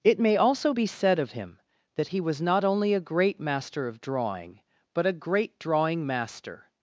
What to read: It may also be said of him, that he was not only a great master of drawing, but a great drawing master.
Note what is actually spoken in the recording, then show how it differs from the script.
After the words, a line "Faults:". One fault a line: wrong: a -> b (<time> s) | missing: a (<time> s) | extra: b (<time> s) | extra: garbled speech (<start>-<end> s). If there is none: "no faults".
It may also be said of him, that he was not only a great master of drawing, but a great drawing master.
Faults:
no faults